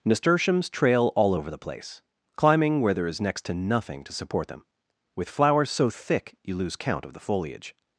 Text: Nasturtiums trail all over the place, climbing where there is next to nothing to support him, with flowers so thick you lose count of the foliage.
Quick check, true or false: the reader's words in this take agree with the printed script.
false